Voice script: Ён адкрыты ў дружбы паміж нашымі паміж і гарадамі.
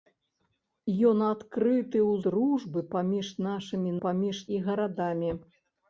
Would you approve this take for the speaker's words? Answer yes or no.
yes